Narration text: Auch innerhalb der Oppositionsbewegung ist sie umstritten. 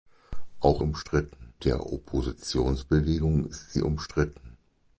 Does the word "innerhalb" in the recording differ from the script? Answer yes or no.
yes